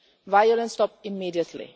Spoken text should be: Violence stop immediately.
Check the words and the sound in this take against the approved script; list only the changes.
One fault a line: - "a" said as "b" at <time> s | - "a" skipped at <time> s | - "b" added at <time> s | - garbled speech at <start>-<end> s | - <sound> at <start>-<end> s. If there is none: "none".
none